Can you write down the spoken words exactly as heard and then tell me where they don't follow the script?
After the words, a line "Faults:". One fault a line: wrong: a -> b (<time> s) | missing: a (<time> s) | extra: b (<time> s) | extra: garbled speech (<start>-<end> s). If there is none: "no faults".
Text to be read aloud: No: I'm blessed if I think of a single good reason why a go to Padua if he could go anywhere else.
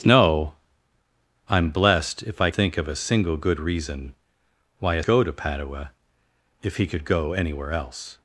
No: I'm blessed if I think of a single good reason why a go to Padua if he could go anywhere else.
Faults:
no faults